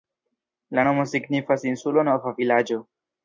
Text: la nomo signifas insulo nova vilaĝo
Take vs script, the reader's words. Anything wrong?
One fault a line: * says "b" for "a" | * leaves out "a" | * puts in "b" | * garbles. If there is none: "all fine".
all fine